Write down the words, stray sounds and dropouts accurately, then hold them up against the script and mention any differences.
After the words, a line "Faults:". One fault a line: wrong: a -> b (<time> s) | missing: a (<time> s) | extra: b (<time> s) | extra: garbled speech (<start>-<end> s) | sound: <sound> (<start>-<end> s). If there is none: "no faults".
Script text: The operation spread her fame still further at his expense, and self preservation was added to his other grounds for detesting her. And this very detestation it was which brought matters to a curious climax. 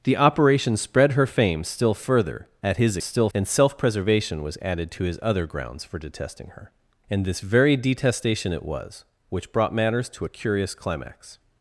The operation spread her fame still further at his still, and self preservation was added to his other grounds for detesting her. And this very detestation it was which brought matters to a curious climax.
Faults:
wrong: expense -> still (3.0 s)